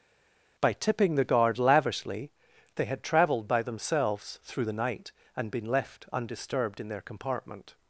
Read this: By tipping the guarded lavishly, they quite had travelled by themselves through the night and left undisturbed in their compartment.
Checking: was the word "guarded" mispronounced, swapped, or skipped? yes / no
yes